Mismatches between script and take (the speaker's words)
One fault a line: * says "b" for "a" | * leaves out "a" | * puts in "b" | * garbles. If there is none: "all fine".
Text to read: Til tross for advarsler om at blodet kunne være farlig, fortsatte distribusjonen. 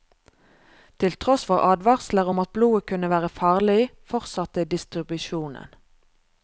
all fine